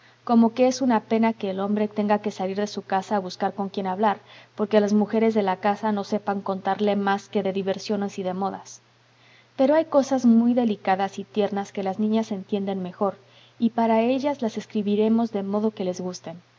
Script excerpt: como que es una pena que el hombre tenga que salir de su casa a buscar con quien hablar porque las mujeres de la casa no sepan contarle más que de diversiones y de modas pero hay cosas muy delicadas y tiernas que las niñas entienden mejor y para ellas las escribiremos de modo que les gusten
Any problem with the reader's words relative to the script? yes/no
no